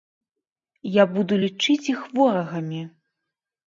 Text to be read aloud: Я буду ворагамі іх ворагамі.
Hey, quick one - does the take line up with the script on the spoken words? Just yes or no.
no